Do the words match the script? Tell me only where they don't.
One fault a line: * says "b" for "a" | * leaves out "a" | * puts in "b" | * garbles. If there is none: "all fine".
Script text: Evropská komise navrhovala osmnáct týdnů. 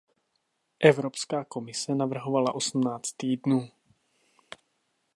all fine